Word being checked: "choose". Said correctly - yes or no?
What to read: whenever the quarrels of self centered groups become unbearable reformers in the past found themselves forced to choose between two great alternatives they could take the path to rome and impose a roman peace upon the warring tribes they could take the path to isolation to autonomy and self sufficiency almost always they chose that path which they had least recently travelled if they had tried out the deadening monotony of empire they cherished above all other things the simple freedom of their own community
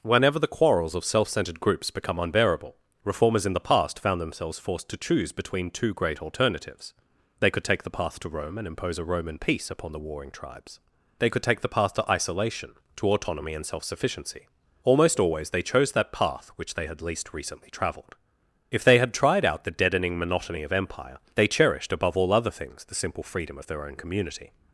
yes